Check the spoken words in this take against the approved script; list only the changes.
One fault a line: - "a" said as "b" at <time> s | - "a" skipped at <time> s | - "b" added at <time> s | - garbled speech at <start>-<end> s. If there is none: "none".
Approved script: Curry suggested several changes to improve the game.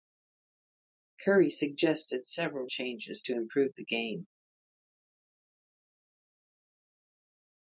none